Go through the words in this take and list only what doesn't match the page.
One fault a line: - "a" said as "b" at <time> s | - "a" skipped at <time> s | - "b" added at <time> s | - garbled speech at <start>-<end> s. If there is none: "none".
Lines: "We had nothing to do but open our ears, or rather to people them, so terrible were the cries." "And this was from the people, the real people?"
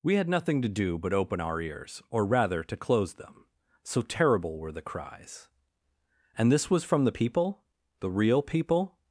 - "people" said as "close" at 2.8 s